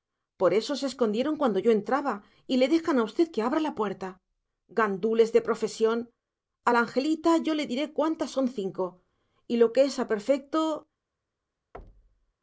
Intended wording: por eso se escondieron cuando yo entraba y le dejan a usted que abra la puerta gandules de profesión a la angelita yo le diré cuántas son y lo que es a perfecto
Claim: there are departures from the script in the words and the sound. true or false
true